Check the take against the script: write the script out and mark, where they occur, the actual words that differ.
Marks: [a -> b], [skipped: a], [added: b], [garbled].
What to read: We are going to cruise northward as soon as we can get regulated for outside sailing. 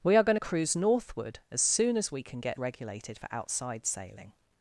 We are going to cruise northward as soon as we can get regulated for outside sailing.